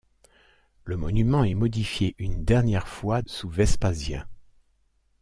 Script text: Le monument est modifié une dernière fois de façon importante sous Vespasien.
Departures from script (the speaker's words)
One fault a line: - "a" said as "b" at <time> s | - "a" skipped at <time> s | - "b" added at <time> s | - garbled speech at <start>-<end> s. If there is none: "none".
- "de façon importante" skipped at 3.2 s